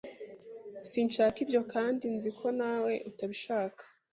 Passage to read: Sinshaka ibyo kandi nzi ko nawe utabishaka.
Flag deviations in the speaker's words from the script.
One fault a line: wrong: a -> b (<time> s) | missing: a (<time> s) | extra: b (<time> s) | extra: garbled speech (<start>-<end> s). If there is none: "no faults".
no faults